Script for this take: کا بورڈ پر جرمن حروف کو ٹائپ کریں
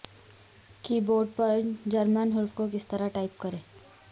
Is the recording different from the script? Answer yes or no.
yes